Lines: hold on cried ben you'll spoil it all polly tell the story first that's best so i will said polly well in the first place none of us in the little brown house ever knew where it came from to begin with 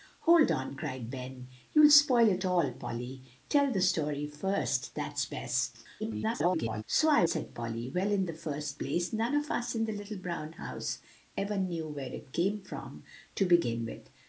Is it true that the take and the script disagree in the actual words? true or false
true